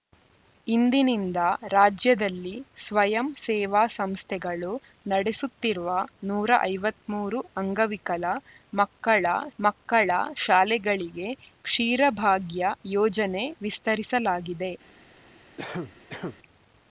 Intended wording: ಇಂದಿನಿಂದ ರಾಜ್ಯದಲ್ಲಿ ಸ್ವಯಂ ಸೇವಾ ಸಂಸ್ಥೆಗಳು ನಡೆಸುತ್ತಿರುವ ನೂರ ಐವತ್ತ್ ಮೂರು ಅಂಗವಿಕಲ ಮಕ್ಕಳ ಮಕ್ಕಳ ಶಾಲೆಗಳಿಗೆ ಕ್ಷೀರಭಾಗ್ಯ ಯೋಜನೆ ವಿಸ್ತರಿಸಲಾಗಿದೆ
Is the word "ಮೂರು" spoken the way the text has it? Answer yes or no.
yes